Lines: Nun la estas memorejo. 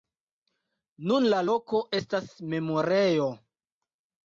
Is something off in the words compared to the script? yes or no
yes